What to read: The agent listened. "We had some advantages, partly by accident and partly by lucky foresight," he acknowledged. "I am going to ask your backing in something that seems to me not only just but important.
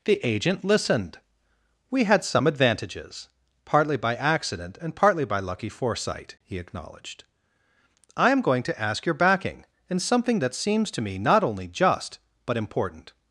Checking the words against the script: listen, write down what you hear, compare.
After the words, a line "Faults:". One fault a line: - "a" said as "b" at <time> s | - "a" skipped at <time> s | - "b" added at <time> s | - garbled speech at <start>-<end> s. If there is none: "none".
The agent listened. "We had some advantages, partly by accident and partly by lucky foresight," he acknowledged. "I am going to ask your backing in something that seems to me not only just but important.
Faults:
none